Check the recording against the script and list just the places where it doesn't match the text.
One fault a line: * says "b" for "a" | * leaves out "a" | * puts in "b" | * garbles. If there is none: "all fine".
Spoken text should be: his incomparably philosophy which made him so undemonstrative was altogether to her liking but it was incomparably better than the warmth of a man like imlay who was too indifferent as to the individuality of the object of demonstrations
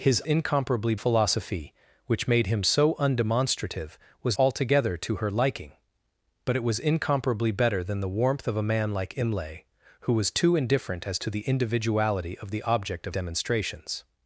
all fine